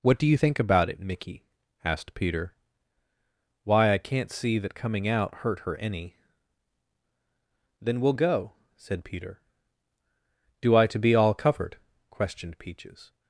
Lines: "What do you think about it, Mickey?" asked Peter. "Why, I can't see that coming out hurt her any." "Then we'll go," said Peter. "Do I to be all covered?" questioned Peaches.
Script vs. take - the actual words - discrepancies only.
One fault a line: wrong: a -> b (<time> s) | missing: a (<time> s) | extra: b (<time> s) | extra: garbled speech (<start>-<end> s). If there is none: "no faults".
no faults